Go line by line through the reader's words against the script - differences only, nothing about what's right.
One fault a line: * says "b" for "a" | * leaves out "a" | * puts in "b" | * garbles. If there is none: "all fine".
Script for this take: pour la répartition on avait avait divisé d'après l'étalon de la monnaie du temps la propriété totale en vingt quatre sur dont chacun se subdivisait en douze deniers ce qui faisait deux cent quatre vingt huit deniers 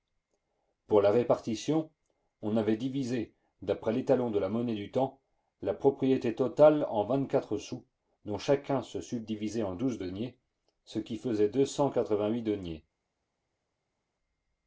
* leaves out "avait"
* says "sous" for "sur"